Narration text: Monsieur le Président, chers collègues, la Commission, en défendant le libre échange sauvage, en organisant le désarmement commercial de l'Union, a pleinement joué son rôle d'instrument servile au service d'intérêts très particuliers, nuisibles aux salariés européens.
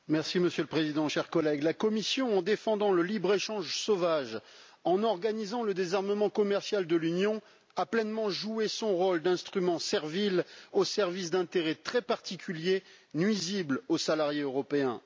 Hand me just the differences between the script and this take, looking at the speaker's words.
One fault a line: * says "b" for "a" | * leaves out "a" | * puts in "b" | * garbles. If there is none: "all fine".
all fine